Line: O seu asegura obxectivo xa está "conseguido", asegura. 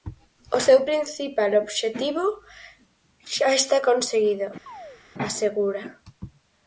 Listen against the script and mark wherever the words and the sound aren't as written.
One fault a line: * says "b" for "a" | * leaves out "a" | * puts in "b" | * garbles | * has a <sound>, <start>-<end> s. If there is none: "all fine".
* says "principal" for "asegura"
* has a chirp, 4.7-5.0 s